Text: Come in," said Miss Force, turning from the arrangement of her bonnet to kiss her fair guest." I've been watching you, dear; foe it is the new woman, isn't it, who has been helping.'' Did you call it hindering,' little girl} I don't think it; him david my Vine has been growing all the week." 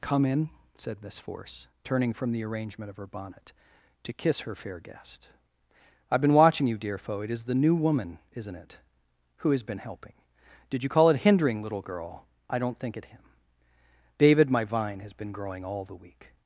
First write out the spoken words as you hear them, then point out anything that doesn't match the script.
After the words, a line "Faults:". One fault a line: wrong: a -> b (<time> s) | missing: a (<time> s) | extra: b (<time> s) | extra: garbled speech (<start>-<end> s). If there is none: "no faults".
Come in," said Miss Force, turning from the arrangement of her bonnet to kiss her fair guest." I've been watching you, dear; foe it is the new woman, isn't it, who has been helping.'' Did you call it hindering,' little girl} I don't think it; him david my Vine has been growing all the week."
Faults:
no faults